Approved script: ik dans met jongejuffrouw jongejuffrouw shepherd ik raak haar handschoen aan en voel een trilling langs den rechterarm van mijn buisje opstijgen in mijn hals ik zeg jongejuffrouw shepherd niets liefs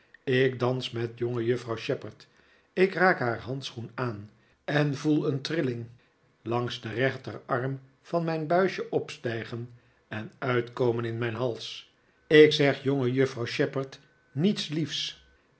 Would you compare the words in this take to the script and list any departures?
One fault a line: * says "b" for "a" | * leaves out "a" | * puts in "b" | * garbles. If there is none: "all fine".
* leaves out "jongejuffrouw"
* puts in "en uitkomen"